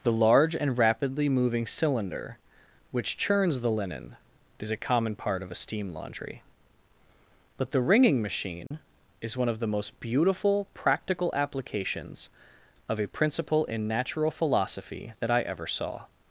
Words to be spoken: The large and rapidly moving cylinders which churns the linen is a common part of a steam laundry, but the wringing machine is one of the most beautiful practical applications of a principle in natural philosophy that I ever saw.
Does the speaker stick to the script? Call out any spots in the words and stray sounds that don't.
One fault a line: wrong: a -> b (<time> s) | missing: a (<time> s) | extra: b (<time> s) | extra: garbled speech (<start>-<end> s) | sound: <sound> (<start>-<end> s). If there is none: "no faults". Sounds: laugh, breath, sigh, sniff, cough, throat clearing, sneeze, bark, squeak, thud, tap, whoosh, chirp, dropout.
wrong: cylinders -> cylinder (1.7 s)
sound: dropout (8.7-8.7 s)